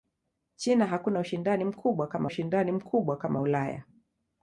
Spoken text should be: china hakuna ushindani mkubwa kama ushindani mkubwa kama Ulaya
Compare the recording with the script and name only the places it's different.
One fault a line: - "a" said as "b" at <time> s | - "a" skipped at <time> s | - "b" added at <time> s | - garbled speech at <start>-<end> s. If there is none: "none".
none